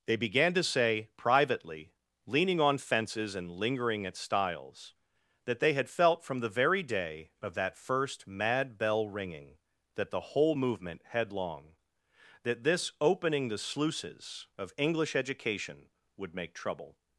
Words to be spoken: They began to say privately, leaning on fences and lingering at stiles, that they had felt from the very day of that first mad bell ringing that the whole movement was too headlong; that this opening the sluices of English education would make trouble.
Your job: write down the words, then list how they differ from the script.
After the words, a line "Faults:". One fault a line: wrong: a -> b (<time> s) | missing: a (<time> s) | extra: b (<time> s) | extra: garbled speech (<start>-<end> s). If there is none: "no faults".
They began to say privately, leaning on fences and lingering at stiles, that they had felt from the very day of that first mad bell ringing that the whole movement headlong; that this opening the sluices of English education would make trouble.
Faults:
missing: was too (11.0 s)